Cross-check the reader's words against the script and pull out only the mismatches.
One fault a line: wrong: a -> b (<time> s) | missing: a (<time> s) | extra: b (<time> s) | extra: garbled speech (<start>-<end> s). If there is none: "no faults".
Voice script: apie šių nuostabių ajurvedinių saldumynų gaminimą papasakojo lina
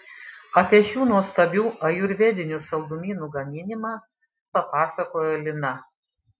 no faults